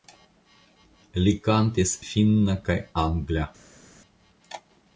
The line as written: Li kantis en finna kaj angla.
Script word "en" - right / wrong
wrong